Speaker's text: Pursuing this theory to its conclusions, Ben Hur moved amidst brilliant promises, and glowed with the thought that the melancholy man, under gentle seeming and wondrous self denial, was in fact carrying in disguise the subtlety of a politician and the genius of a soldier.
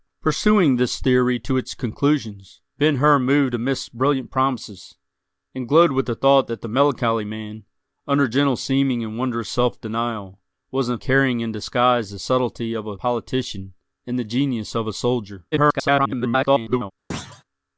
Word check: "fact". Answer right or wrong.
wrong